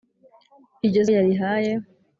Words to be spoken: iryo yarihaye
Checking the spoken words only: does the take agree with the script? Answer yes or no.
yes